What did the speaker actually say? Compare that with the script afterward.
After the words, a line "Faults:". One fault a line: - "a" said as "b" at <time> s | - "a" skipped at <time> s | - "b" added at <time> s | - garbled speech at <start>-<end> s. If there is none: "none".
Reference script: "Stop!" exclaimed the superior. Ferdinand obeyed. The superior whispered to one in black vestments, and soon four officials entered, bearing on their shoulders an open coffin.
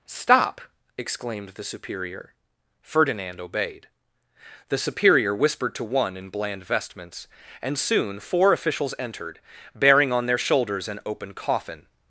"Stop!" exclaimed the superior. Ferdinand obeyed. The superior whispered to one in bland vestments, and soon four officials entered, bearing on their shoulders an open coffin.
Faults:
- "black" said as "bland" at 6.3 s